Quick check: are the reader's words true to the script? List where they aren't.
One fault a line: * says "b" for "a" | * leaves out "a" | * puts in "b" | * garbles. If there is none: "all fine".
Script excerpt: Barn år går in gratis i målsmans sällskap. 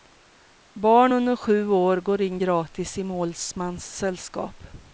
* puts in "under sju"